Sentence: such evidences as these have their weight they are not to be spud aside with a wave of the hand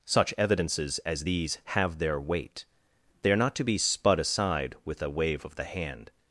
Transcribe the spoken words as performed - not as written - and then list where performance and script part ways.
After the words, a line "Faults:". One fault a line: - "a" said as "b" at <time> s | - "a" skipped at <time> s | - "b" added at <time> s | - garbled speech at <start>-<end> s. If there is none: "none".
such evidences as these have their weight they are not to be spud aside with a wave of the hand
Faults:
none